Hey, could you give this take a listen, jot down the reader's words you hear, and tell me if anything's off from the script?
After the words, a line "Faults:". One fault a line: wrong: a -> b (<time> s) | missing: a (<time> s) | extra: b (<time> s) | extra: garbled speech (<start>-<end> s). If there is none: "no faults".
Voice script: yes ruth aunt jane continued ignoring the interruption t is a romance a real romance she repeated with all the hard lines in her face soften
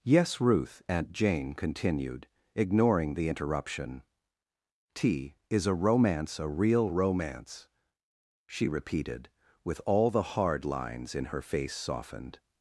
yes ruth aunt jane continued ignoring the interruption t is a romance a real romance she repeated with all the hard lines in her face softened
Faults:
wrong: soften -> softened (11.7 s)